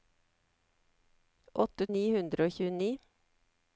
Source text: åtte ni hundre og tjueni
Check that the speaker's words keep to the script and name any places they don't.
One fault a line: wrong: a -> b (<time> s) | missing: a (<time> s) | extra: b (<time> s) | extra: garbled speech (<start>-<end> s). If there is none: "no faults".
no faults